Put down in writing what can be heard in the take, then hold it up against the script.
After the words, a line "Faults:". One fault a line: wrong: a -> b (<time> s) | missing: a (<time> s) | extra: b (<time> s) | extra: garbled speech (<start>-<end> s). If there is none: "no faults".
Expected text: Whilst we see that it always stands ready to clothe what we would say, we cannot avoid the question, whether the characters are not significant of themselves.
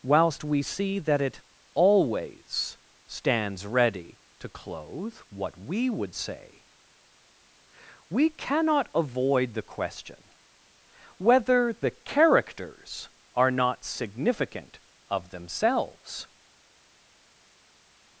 Whilst we see that it always stands ready to clothe what we would say, we cannot avoid the question, whether the characters are not significant of themselves.
Faults:
no faults